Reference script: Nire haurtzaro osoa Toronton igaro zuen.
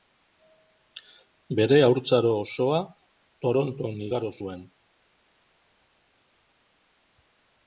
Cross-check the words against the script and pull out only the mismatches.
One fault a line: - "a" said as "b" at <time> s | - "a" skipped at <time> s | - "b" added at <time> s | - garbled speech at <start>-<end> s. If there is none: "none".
- "Nire" said as "Bere" at 1.6 s